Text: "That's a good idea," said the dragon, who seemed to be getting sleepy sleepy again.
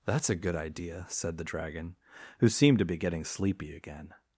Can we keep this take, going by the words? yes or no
no